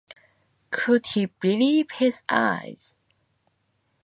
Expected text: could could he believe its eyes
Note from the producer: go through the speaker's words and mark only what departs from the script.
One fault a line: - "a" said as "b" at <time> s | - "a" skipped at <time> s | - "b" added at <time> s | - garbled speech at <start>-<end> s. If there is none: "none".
- "could" skipped at 1.1 s
- "its" said as "his" at 1.9 s